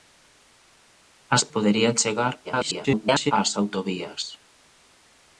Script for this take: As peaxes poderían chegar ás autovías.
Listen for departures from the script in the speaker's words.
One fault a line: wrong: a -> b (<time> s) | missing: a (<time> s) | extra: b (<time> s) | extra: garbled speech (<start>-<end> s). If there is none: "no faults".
missing: peaxes (1.4 s)
extra: garbled speech (2.4-3.3 s)